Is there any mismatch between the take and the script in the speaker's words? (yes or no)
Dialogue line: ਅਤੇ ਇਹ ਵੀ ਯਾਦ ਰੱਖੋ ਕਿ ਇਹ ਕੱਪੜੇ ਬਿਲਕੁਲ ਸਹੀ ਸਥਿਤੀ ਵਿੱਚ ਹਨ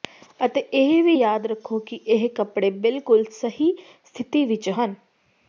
no